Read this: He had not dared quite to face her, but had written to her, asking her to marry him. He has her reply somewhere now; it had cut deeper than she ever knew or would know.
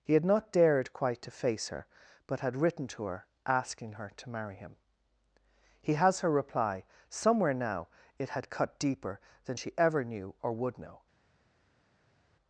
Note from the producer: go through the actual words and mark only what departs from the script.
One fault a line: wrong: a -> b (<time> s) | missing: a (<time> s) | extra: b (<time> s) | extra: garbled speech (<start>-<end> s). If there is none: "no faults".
no faults